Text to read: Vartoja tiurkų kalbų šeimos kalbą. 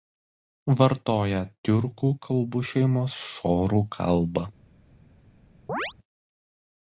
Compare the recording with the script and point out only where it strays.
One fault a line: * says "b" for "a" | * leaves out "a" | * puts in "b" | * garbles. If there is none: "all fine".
* puts in "šorų"